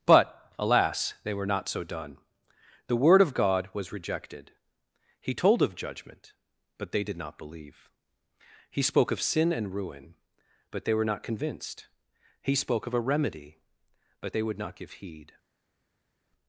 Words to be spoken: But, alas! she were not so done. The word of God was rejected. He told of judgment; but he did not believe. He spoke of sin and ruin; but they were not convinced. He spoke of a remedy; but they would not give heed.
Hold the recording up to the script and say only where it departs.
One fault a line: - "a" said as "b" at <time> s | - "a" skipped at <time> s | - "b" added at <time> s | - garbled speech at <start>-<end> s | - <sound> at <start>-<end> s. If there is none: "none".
- "she" said as "they" at 1.2 s
- "he" said as "they" at 6.9 s